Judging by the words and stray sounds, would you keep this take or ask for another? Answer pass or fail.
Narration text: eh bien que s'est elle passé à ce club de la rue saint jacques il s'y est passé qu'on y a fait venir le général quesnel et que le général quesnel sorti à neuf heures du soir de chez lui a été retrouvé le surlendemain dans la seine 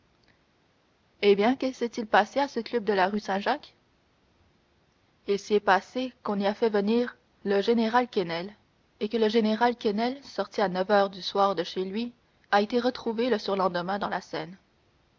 fail